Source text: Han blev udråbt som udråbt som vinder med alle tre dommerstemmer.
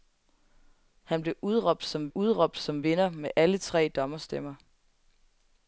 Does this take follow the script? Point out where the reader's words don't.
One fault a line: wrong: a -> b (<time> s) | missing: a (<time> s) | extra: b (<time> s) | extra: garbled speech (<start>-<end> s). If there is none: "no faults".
no faults